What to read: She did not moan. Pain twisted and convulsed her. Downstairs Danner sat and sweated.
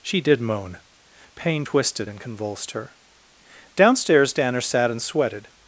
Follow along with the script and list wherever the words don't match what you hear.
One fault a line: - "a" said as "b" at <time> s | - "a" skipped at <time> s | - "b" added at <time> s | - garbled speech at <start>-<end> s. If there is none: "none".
- "not" skipped at 0.4 s